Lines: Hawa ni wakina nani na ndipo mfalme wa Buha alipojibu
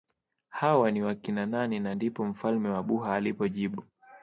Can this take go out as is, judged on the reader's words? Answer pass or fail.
pass